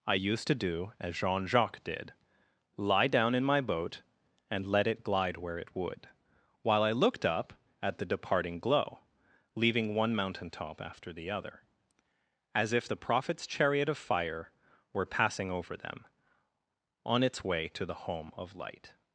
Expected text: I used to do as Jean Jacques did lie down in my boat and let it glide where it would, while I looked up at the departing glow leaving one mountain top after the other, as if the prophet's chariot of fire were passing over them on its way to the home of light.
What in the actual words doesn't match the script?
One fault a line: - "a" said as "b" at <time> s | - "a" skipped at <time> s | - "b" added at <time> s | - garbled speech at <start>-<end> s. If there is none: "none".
none